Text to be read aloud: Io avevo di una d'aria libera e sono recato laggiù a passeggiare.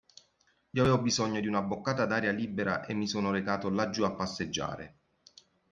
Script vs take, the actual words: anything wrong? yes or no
yes